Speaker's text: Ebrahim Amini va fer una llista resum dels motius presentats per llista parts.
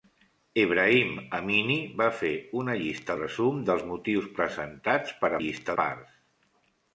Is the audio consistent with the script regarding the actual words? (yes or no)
yes